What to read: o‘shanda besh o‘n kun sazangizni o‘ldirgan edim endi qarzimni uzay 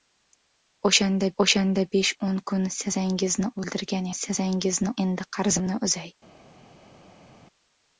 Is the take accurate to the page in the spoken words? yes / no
no